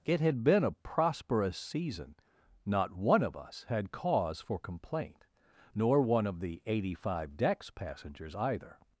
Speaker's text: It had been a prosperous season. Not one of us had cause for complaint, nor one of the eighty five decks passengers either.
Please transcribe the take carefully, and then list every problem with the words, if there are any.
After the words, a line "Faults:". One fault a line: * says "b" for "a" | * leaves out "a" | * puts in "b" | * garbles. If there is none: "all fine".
It had been a prosperous season. Not one of us had cause for complaint, nor one of the eighty five decks passengers either.
Faults:
all fine